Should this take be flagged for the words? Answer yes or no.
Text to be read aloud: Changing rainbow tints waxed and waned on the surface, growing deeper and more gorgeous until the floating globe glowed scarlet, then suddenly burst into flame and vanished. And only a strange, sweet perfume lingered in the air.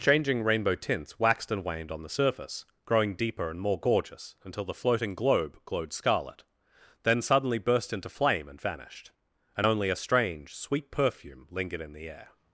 no